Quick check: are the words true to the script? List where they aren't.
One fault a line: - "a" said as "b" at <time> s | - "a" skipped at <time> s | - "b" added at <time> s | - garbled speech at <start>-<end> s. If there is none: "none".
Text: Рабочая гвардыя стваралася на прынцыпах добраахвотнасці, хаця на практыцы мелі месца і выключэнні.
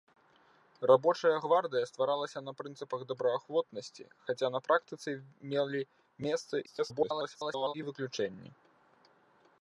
- garbled speech at 6.7-7.7 s